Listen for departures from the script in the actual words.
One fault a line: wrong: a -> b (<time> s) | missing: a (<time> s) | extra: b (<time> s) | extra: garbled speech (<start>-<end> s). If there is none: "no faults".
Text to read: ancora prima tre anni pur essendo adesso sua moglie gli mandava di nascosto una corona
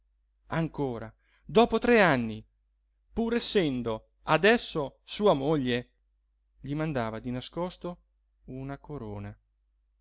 wrong: prima -> dopo (1.4 s)